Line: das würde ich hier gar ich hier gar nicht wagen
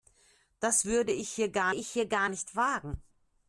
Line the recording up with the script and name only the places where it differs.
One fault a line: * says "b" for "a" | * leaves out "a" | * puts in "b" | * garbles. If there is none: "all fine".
all fine